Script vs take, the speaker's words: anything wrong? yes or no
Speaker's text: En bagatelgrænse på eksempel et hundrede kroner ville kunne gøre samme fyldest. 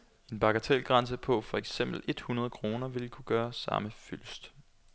yes